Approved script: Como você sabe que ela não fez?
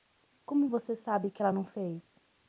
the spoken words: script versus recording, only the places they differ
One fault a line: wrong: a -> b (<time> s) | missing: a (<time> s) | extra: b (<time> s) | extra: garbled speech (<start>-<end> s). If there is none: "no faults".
no faults